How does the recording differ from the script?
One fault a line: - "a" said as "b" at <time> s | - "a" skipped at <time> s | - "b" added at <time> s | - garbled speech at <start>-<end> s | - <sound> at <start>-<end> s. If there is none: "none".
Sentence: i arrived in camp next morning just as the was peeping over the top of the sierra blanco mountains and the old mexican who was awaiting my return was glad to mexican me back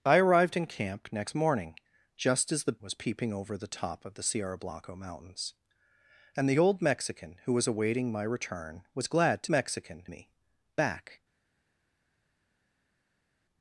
none